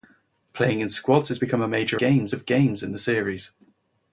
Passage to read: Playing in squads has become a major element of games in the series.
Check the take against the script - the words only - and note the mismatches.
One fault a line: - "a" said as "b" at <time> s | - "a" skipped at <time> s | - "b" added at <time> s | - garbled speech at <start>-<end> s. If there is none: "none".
- "element" said as "games" at 2.0 s